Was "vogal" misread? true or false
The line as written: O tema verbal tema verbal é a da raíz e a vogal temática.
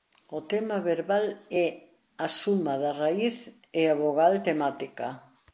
false